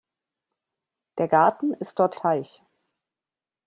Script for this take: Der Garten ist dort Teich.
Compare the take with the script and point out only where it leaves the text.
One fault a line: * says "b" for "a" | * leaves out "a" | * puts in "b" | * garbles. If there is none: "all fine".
all fine